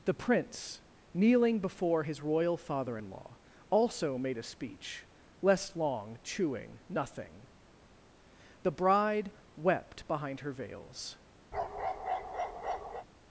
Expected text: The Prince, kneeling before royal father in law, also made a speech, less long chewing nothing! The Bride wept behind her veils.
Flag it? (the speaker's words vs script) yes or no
yes